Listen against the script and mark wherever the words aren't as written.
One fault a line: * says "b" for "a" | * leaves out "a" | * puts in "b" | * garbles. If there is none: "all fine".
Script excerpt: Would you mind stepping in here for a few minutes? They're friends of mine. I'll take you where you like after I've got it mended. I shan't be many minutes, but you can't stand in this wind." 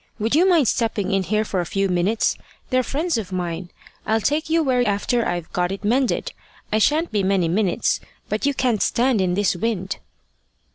* leaves out "you like"